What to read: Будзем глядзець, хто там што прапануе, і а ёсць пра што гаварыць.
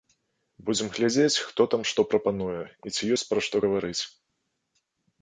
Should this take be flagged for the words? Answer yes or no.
yes